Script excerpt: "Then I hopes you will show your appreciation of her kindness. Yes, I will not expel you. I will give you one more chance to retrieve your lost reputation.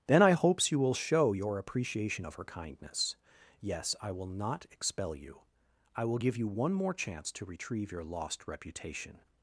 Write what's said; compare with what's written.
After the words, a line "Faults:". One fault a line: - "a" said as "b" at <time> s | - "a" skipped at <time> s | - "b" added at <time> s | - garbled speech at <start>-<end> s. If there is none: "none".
"Then I hopes you will show your appreciation of her kindness. Yes, I will not expel you. I will give you one more chance to retrieve your lost reputation.
Faults:
none